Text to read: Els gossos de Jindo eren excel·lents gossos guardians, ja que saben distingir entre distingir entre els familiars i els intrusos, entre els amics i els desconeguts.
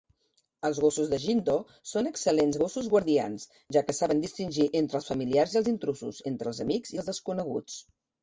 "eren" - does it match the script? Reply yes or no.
no